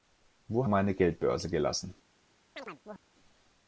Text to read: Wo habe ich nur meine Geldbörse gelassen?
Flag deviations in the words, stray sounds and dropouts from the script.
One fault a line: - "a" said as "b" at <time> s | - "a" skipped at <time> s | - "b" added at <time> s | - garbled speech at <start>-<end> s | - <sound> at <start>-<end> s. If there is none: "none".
- "habe ich nur" skipped at 0.7 s
- chirp at 2.6-3.0 s